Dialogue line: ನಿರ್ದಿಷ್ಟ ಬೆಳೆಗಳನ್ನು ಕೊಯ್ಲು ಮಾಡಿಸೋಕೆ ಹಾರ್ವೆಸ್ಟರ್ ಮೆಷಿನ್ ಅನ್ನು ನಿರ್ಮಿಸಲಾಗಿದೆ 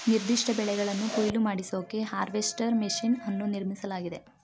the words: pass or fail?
pass